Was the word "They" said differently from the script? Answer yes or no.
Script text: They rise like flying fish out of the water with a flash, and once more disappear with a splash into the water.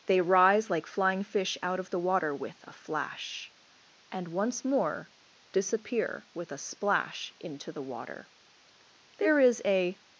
no